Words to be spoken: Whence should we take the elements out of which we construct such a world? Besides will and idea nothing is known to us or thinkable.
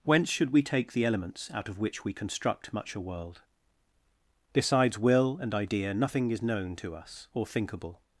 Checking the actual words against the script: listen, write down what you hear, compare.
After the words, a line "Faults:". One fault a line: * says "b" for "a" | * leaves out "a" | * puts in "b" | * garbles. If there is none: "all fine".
Whence should we take the elements out of which we construct much a world? Besides will and idea nothing is known to us or thinkable.
Faults:
* says "much" for "such"